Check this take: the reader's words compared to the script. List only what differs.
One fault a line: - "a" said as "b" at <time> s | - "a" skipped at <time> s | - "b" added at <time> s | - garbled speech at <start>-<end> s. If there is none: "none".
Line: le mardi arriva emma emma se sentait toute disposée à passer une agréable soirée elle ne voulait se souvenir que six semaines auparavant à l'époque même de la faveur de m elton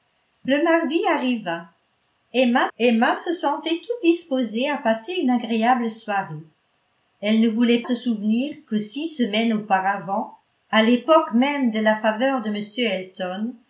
none